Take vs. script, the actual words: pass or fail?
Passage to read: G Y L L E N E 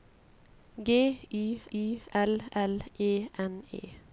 fail